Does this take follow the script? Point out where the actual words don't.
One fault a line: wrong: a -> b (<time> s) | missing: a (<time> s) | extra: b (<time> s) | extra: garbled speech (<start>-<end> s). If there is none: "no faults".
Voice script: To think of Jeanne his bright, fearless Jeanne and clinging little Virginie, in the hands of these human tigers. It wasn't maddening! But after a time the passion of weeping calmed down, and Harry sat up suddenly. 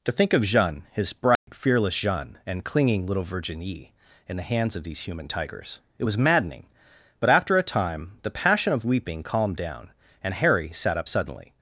wrong: wasn't -> was (6.0 s)